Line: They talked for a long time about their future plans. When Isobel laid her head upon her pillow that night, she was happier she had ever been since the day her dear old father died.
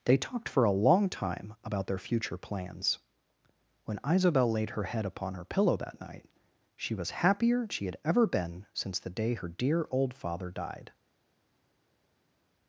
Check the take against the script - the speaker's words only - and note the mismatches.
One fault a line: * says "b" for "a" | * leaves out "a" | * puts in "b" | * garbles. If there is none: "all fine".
all fine